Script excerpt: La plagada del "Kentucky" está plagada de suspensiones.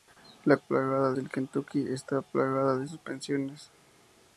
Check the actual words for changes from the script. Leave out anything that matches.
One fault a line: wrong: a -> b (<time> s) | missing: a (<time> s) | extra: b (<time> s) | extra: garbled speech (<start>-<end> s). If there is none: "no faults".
no faults